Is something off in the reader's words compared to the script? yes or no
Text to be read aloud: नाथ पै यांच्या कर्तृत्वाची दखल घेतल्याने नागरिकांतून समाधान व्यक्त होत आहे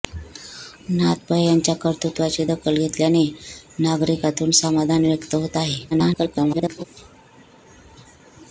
yes